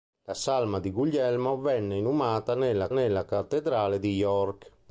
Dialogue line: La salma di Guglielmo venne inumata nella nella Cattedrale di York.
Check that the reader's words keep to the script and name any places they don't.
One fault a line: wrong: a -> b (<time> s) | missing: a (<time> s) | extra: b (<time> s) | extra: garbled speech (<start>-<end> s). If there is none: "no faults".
no faults